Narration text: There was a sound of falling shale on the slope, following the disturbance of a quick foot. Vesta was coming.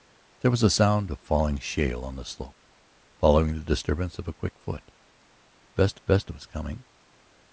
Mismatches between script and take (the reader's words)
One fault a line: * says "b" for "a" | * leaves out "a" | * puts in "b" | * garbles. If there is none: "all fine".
* puts in "vesta"